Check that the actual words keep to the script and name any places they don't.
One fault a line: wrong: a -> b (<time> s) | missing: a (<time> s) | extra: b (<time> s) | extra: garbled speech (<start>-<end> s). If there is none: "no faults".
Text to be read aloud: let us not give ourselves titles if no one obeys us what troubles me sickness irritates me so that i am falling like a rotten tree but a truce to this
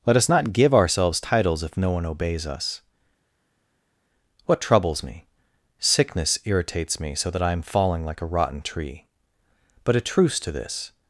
no faults